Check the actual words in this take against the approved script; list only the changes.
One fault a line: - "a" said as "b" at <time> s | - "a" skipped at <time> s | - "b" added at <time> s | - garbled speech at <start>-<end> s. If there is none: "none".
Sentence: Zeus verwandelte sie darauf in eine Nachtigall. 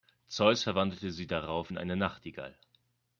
none